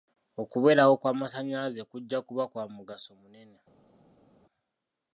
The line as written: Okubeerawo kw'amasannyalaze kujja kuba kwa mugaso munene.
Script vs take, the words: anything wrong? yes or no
no